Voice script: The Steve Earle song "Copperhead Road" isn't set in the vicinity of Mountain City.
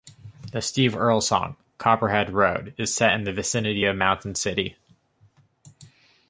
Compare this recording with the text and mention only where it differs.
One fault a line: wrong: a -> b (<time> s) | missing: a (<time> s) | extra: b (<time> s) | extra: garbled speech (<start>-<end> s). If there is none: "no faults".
wrong: isn't -> is (2.8 s)